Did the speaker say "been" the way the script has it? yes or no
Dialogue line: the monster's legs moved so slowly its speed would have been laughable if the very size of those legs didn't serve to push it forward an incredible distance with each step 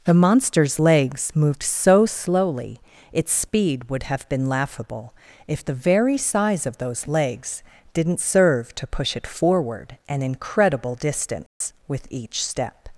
yes